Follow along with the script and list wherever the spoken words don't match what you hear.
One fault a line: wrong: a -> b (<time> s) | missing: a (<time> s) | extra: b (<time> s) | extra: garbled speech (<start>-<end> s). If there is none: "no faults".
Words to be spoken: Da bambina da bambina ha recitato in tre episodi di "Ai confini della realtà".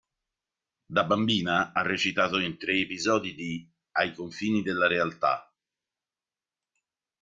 missing: da bambina (1.8 s)